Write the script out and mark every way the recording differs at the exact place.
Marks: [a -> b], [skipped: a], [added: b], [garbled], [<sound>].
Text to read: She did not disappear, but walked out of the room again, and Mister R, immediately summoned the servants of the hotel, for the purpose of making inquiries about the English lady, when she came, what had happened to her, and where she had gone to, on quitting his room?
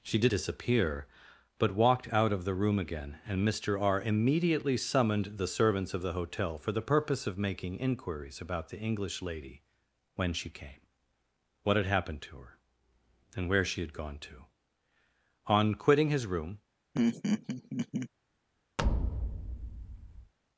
She did [skipped: not] disappear, but walked out of the room again, and Mister R, immediately summoned the servants of the hotel, for the purpose of making inquiries about the English lady, when she came, what had happened to her, and where she had gone to, on quitting his room? [laugh] [thud]